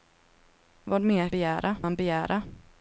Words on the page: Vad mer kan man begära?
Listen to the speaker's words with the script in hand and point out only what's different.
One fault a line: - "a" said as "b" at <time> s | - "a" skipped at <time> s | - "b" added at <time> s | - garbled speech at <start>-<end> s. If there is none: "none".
- "kan" said as "begära" at 1.3 s